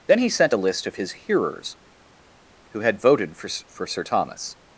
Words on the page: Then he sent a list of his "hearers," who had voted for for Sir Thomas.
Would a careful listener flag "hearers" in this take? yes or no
no